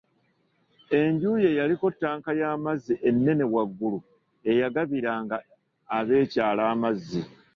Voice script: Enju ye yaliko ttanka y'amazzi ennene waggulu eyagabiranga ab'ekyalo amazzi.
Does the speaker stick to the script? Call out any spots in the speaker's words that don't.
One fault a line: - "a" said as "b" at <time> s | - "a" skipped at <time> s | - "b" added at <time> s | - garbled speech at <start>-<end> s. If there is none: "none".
none